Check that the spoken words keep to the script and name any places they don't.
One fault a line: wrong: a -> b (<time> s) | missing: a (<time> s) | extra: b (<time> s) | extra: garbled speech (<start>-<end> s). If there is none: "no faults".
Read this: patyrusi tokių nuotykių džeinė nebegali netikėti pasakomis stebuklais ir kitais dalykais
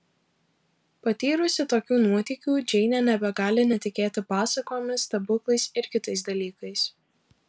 no faults